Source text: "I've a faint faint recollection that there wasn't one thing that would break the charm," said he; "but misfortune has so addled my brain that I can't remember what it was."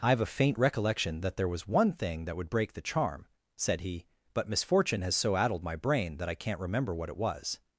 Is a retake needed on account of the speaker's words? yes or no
yes